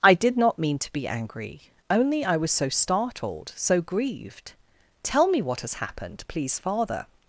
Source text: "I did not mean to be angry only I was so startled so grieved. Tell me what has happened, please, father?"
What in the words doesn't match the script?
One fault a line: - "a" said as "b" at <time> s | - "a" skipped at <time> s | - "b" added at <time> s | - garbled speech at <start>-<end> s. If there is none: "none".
none